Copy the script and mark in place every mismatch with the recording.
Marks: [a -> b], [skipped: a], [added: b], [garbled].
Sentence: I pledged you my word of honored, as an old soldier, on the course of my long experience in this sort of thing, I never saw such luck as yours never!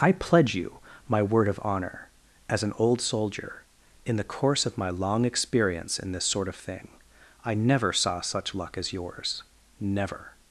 I [pledged -> pledge] you my word of [honored, -> honor] as an old soldier, [on -> in] the course of my long experience in this sort of thing, I never saw such luck as yours never!